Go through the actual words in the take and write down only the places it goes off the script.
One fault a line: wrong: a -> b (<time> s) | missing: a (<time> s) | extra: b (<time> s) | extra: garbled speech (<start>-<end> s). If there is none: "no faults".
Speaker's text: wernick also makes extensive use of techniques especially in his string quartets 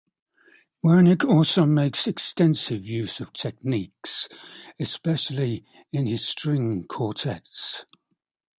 no faults